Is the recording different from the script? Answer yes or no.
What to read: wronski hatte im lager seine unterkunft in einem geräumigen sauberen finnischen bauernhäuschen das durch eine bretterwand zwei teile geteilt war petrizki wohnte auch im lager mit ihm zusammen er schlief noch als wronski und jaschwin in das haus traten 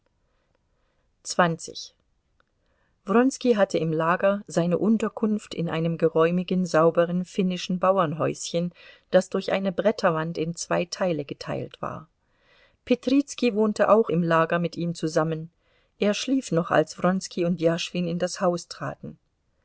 yes